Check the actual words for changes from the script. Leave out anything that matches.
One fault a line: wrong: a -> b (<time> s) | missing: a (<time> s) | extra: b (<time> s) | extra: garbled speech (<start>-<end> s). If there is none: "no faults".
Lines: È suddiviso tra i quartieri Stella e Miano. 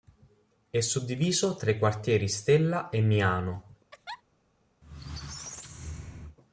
no faults